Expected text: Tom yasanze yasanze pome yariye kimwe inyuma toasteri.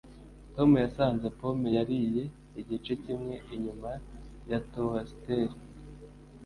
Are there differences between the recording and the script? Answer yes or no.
yes